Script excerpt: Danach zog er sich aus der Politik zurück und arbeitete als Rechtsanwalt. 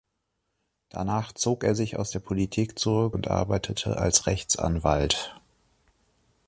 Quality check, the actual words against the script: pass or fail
pass